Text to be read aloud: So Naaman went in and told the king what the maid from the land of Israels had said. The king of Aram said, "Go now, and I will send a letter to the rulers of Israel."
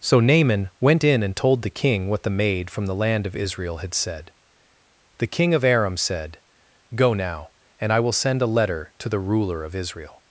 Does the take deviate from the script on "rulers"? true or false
true